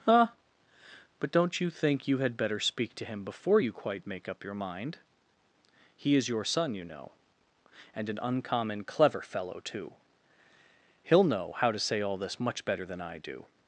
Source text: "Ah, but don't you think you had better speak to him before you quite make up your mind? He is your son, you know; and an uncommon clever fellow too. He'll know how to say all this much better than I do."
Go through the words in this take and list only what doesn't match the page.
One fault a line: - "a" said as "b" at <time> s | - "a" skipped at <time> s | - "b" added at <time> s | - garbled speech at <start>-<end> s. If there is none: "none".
none